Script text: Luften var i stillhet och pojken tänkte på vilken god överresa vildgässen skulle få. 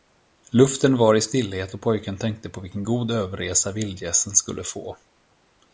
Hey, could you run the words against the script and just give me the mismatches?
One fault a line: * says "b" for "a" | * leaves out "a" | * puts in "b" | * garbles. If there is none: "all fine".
all fine